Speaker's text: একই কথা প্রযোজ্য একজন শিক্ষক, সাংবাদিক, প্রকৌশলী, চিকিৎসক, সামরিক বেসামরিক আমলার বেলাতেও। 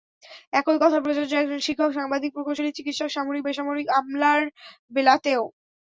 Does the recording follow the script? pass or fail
pass